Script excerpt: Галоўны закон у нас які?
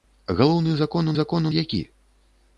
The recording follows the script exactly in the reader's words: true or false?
false